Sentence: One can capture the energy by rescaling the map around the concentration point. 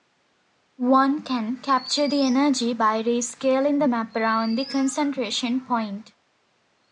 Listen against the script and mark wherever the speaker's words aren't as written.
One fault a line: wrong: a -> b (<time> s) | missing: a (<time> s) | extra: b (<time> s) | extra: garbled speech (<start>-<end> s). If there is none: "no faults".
no faults